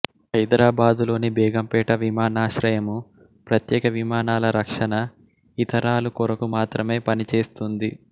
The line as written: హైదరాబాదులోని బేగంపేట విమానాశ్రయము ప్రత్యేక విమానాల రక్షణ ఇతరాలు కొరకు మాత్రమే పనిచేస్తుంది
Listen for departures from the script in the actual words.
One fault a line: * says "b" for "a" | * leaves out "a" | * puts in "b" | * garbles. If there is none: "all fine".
all fine